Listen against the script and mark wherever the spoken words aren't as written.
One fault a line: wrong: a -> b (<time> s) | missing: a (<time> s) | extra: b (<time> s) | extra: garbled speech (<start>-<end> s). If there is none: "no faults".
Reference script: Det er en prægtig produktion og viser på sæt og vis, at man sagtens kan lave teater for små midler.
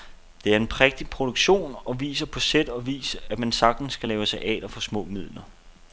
no faults